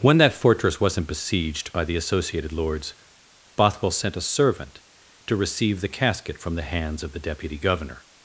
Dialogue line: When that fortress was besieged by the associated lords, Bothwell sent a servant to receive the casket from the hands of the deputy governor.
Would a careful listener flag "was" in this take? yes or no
yes